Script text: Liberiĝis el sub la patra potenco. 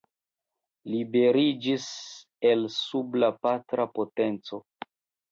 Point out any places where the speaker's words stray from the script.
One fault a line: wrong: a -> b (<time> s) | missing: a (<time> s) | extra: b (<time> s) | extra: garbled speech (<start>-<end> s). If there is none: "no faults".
no faults